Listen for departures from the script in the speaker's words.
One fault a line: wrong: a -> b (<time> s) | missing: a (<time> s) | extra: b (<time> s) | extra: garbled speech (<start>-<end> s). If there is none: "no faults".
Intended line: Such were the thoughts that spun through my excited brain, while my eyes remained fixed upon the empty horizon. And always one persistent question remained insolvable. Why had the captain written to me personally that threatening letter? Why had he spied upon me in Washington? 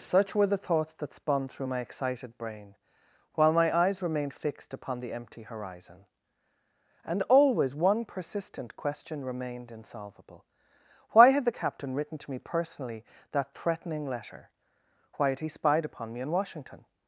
no faults